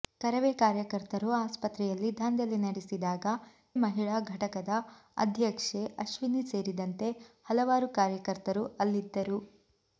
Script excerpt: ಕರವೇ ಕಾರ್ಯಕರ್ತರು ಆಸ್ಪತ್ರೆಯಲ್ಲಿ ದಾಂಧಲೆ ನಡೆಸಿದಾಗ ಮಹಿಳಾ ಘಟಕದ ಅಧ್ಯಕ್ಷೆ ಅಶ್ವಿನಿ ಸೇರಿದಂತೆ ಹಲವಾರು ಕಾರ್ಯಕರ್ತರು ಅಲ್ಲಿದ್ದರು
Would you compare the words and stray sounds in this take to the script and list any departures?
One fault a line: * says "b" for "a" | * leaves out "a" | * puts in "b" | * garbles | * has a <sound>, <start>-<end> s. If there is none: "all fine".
all fine